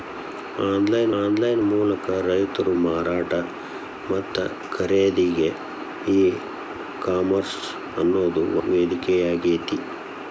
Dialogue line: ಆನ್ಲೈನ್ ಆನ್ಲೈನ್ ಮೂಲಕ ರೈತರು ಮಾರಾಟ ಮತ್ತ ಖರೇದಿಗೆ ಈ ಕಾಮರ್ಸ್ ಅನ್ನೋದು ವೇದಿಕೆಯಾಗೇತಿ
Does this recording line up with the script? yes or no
yes